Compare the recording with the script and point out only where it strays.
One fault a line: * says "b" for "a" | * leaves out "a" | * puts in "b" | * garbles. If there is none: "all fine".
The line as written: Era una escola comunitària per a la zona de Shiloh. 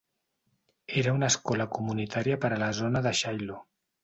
all fine